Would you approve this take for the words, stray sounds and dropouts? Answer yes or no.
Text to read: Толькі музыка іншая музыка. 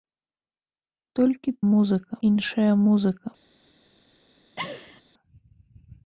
no